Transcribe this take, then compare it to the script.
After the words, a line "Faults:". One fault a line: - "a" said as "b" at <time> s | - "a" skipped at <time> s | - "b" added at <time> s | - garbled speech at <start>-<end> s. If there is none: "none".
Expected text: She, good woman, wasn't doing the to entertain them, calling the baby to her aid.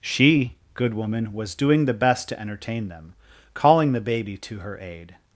She, good woman, was doing the best to entertain them, calling the baby to her aid.
Faults:
- "wasn't" said as "was" at 1.3 s
- "best" added at 1.9 s